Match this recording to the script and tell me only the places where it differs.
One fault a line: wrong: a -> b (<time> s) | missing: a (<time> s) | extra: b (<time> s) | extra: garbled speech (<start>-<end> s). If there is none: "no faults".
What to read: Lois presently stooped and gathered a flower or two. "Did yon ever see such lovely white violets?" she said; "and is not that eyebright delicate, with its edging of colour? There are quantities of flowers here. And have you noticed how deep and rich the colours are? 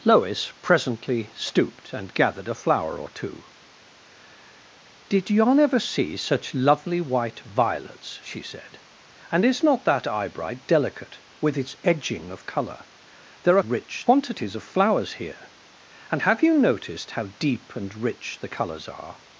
wrong: are -> rich (13.6 s)